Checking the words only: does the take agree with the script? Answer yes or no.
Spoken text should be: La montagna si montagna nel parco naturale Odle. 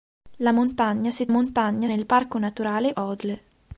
yes